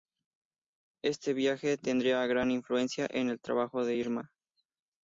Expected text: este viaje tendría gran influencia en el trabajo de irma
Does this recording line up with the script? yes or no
yes